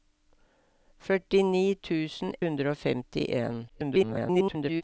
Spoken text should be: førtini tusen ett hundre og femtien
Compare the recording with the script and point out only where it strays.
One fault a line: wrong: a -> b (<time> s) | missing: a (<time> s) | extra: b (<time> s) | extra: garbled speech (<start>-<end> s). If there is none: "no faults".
missing: ett (2.3 s)
extra: garbled speech (3.7-4.8 s)